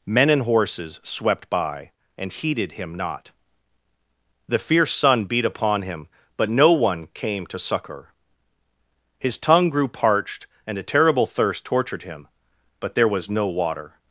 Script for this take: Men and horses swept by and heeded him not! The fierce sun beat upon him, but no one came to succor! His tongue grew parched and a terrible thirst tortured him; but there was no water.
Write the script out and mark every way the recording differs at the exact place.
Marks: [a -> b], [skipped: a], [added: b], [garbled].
Men and horses swept by and heeded him not! The fierce sun beat upon him, but no one came to succor! His tongue grew parched and a terrible thirst tortured him; but there was no water.